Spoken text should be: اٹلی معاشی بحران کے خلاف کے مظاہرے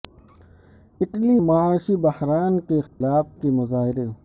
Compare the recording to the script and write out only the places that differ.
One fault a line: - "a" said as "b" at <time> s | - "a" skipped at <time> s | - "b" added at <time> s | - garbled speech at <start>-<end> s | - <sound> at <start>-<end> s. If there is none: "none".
- dropout at 2.9-3.0 s